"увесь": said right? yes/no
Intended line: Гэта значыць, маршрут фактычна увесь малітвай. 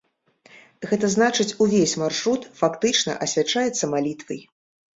no